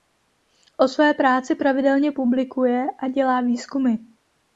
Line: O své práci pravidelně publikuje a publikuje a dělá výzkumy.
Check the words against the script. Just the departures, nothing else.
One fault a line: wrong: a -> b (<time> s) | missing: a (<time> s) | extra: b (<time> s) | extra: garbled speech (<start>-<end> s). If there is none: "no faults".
missing: publikuje a (3.1 s)